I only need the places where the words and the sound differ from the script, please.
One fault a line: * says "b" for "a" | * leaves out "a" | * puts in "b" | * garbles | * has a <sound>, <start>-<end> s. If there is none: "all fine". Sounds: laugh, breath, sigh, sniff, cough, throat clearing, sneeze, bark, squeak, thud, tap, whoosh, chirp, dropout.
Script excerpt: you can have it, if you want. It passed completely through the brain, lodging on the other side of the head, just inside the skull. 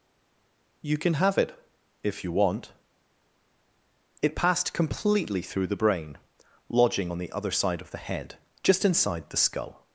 all fine